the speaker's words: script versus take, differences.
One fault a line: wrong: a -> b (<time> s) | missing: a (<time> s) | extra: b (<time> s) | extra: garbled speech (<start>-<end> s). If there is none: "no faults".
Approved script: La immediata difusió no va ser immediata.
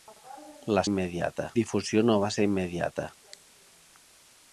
no faults